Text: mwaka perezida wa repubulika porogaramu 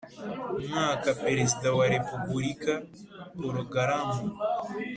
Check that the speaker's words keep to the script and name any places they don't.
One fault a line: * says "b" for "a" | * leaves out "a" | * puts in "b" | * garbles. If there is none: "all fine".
all fine